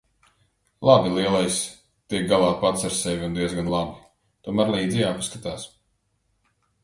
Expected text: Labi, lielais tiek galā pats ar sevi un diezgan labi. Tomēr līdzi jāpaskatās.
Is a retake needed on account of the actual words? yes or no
no